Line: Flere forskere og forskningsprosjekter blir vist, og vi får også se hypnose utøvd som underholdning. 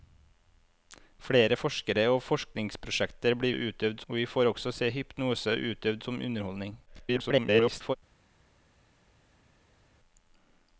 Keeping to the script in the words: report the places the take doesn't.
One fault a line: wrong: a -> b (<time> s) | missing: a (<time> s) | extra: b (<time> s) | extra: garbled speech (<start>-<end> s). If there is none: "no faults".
wrong: vist -> utøvd (3.5 s)
extra: garbled speech (6.9-8.0 s)